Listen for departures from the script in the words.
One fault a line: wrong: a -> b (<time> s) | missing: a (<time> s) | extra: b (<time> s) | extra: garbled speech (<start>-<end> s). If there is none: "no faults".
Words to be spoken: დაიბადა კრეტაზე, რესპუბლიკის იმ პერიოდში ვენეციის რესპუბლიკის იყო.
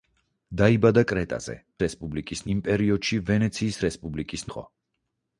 no faults